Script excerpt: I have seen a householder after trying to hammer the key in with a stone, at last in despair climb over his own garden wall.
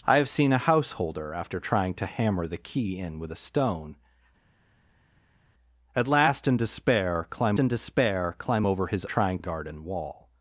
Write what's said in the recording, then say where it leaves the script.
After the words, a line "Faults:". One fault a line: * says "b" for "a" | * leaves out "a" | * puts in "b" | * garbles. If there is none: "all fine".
I have seen a householder after trying to hammer the key in with a stone, at last in despair climb in despair climb over his trying garden wall.
Faults:
* puts in "in despair climb"
* says "trying" for "own"